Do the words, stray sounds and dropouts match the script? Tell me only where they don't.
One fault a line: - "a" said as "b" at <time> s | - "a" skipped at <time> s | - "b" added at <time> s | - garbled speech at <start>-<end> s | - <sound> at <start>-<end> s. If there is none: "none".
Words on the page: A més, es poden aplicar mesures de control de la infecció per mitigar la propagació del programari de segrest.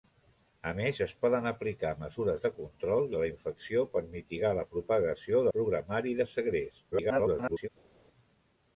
- "del" skipped at 5.5 s
- garbled speech at 6.9-7.7 s